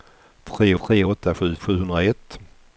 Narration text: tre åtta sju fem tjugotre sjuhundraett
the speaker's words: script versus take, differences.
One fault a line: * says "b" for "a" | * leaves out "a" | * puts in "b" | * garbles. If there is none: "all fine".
* puts in "tre"
* leaves out "fem tjugotre"